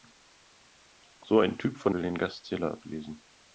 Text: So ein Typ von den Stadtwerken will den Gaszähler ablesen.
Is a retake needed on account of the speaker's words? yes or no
yes